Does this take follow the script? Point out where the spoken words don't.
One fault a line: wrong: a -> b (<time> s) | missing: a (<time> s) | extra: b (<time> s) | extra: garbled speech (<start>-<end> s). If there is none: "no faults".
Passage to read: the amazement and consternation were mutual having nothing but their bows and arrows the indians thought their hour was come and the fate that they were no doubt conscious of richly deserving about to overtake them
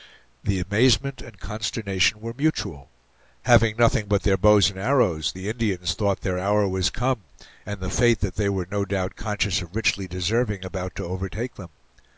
no faults